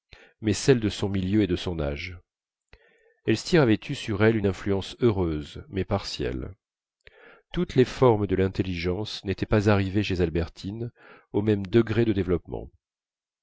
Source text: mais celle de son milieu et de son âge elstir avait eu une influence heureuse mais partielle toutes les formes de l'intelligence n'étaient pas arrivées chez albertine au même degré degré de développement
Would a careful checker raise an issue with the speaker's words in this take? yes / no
yes